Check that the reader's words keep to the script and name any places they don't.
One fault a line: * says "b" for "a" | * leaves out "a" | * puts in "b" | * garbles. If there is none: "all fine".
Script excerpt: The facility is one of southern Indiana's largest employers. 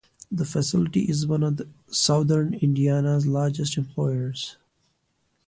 all fine